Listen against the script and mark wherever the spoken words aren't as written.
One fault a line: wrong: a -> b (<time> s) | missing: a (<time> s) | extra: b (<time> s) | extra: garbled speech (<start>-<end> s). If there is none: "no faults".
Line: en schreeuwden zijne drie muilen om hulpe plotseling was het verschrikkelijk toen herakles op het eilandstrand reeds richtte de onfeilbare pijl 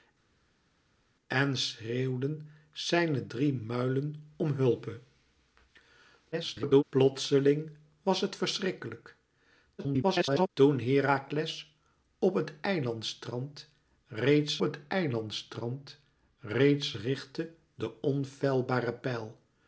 extra: garbled speech (6.3-6.8 s)
extra: garbled speech (9.8-10.5 s)
extra: het eilandstrand reeds (14.6 s)